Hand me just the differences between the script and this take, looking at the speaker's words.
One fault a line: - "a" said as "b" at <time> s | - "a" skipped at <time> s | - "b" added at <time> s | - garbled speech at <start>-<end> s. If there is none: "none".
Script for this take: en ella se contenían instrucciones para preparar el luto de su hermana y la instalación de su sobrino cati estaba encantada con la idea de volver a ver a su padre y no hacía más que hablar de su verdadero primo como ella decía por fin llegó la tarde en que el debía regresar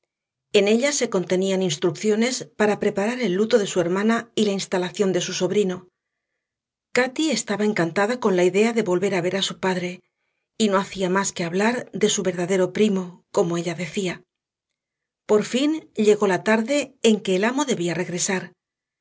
- "amo" added at 17.4 s